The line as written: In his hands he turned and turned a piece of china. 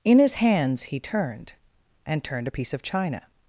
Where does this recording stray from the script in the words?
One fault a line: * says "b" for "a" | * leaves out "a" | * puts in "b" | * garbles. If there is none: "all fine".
all fine